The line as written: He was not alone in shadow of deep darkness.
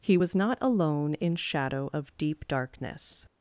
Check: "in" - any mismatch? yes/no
no